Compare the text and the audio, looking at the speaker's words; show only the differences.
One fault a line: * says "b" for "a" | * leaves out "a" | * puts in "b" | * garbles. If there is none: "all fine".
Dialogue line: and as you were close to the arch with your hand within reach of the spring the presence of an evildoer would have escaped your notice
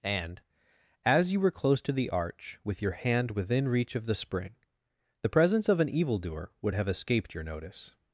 all fine